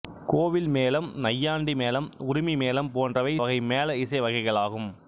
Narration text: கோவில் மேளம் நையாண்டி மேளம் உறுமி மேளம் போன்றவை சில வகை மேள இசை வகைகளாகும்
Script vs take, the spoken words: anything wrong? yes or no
yes